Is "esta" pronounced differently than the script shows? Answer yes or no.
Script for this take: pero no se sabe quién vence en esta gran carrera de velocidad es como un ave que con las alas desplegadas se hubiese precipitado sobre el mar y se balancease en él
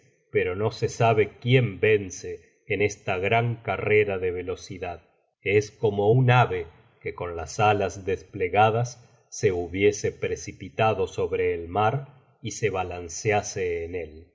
no